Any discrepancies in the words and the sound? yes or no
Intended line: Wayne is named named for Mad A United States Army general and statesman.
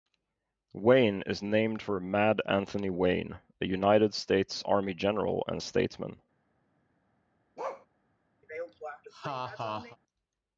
yes